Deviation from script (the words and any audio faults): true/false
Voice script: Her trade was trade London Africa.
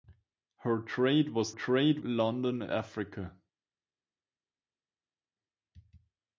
false